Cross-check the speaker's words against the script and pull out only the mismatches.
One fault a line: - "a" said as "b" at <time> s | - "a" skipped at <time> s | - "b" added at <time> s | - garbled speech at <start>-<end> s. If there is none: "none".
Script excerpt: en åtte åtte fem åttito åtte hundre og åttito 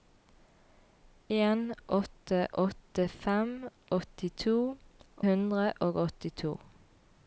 - "åtte" skipped at 4.5 s